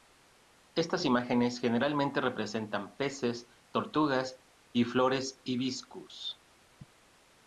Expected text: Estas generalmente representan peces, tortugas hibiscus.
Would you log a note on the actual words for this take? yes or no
yes